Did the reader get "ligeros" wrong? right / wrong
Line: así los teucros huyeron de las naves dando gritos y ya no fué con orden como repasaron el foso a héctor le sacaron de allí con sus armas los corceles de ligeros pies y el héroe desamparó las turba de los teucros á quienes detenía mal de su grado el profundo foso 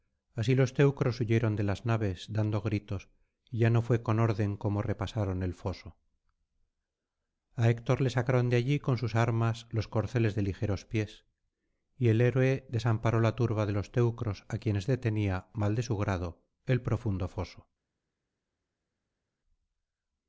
right